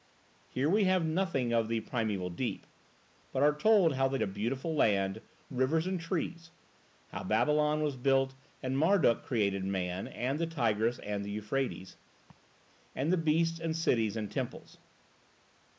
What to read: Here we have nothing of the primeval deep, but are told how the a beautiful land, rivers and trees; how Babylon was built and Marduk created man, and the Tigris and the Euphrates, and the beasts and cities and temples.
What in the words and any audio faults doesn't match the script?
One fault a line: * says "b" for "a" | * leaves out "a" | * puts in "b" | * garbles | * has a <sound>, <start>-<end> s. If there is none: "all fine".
* has a laugh, 12.3-12.6 s